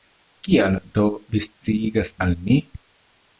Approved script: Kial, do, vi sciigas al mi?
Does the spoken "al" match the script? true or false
true